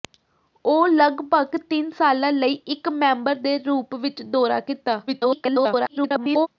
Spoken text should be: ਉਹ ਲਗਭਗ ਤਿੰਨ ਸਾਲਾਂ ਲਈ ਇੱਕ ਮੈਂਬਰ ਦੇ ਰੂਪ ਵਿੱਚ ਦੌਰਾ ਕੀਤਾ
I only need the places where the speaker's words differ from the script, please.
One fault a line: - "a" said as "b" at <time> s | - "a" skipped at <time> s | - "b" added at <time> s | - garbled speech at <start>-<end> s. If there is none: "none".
- garbled speech at 5.1-6.5 s